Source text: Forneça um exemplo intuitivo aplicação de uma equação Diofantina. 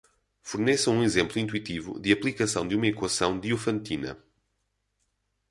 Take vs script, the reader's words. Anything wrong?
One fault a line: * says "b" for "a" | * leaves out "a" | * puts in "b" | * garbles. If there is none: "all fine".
* puts in "de"